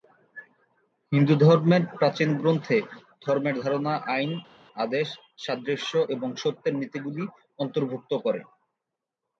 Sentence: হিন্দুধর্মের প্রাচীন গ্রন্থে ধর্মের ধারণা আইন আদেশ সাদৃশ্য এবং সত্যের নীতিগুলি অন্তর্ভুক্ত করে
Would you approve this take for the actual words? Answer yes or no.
yes